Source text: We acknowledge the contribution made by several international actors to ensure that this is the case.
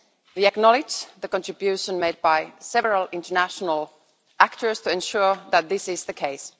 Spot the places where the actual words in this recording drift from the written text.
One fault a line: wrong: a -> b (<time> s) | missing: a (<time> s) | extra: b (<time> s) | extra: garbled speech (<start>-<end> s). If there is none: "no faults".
no faults